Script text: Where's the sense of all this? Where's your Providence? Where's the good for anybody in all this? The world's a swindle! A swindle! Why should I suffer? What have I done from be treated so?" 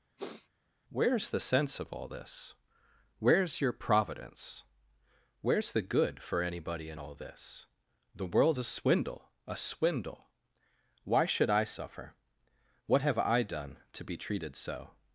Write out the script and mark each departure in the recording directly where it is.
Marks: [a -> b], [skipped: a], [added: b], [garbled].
Where's the sense of all this? Where's your Providence? Where's the good for anybody in all this? The world's a swindle! A swindle! Why should I suffer? What have I done [from -> to] be treated so?"